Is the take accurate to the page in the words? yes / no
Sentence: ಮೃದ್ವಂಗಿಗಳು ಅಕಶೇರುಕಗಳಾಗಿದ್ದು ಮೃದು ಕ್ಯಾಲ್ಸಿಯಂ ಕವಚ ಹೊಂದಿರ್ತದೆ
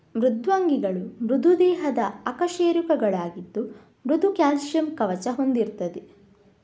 no